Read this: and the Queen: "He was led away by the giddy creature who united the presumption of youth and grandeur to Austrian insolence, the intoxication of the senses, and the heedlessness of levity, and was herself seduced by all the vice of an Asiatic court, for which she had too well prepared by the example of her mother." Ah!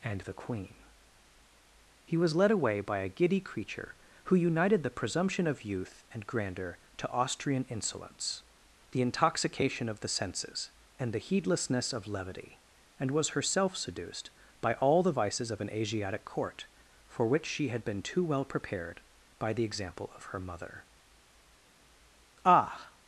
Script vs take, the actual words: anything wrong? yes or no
yes